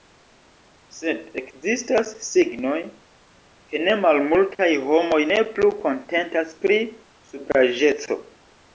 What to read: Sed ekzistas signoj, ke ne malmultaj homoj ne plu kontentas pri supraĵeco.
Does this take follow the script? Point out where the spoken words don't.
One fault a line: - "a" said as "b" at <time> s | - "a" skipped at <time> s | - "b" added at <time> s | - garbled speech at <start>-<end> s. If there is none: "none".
none